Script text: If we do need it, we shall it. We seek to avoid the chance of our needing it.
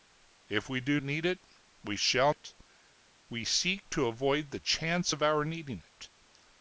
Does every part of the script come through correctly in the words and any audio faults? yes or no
yes